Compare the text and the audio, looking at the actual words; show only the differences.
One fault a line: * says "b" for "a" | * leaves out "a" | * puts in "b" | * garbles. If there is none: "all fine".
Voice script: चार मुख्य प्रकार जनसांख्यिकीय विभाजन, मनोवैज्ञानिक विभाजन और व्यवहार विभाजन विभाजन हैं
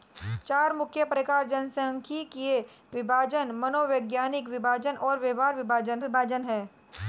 all fine